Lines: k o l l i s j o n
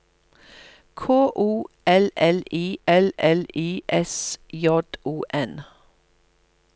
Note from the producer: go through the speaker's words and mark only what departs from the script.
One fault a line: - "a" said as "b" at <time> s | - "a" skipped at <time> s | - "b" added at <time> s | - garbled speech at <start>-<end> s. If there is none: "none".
- "l l i" added at 2.9 s